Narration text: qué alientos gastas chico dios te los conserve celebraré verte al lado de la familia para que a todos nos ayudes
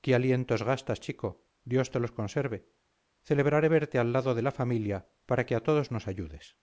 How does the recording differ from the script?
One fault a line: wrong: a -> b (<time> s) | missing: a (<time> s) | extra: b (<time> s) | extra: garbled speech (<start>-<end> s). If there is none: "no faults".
no faults